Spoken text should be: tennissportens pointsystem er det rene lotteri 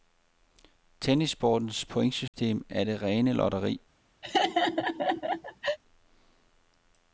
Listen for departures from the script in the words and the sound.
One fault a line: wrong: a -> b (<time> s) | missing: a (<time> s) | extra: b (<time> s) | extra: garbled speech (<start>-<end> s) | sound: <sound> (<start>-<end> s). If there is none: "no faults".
sound: dropout (2.3-2.3 s)
sound: laugh (4.2-5.8 s)